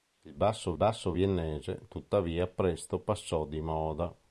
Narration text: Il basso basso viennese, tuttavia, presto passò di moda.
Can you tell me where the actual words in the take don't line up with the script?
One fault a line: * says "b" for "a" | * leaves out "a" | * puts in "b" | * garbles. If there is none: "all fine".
all fine